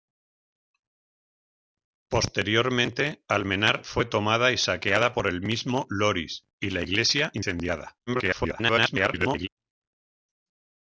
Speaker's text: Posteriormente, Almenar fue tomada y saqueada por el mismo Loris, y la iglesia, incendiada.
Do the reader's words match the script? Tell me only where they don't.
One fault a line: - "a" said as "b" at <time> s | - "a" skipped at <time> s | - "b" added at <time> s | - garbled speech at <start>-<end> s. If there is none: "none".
- garbled speech at 8.1-9.5 s